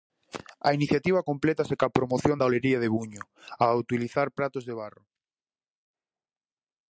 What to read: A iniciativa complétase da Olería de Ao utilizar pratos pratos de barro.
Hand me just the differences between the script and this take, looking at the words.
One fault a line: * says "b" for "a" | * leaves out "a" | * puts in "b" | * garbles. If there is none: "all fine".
* puts in "coa promoción"
* puts in "Buño"
* leaves out "pratos"